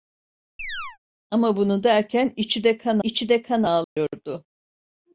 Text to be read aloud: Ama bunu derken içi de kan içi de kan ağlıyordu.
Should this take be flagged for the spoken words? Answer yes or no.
no